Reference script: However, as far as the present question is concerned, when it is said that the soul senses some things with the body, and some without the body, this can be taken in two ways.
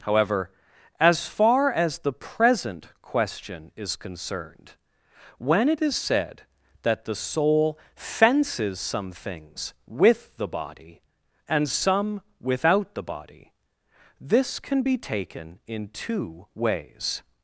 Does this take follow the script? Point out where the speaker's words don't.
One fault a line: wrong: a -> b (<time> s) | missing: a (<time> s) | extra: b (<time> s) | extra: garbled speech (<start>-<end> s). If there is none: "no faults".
wrong: senses -> fences (8.0 s)